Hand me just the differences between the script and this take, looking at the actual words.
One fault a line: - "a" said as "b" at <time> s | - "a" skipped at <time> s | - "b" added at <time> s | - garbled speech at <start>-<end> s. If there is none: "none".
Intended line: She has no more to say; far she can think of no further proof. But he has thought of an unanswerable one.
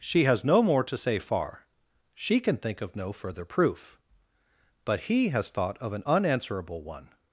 none